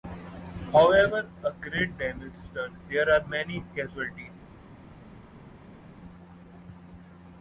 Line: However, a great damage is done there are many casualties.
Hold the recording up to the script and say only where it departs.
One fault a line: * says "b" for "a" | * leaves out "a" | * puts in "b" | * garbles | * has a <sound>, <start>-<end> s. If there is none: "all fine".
all fine